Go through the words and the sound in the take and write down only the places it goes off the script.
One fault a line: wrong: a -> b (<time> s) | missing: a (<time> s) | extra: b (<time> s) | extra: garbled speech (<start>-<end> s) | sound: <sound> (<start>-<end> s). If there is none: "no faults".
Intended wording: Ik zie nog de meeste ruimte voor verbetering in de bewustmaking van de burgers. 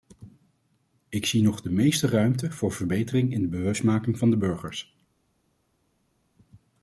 no faults